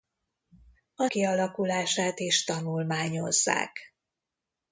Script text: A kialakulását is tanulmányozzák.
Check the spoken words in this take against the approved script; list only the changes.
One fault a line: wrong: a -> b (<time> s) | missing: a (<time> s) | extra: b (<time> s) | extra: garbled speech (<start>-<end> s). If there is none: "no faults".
no faults